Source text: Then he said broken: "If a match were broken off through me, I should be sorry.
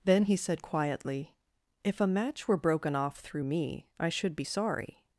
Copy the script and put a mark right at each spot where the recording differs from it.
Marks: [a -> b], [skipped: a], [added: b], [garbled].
Then he said [broken: -> quietly] "If a match were broken off through me, I should be sorry.